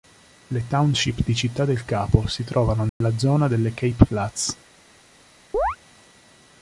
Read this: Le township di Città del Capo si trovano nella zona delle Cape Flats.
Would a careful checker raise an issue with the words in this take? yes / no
no